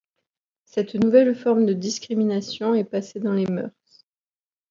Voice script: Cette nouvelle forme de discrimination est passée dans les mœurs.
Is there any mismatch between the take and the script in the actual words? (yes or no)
no